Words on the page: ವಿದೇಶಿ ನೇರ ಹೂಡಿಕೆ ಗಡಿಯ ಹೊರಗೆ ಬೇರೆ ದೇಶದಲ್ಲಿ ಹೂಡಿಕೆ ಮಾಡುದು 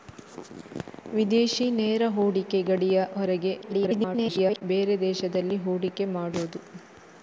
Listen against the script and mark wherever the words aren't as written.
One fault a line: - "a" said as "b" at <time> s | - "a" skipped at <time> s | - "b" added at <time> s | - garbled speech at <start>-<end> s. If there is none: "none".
- garbled speech at 3.6-4.6 s